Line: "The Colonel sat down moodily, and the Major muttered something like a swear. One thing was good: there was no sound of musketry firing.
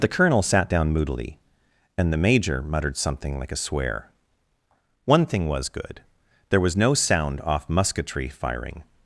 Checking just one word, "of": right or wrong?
wrong